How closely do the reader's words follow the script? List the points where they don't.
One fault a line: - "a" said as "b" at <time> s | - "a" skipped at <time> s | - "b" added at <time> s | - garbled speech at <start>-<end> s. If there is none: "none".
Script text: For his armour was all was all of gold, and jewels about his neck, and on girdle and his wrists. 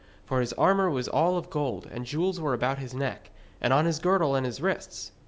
- "was all" skipped at 1.4 s
- "were" added at 2.4 s
- "his" added at 3.9 s